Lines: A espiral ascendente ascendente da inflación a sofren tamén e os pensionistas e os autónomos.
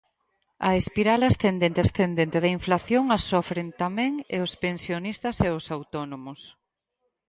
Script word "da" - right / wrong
right